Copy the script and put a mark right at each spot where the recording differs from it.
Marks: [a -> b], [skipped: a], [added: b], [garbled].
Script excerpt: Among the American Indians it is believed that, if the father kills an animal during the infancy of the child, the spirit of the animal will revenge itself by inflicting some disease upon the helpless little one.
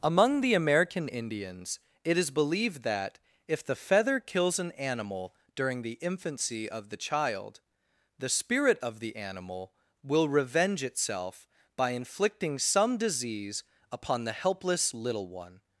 Among the American Indians it is believed that, if the [father -> feather] kills an animal during the infancy of the child, the spirit of the animal will revenge itself by inflicting some disease upon the helpless little one.